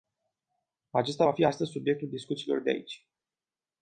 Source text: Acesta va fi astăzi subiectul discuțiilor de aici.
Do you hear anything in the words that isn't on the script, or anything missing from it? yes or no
no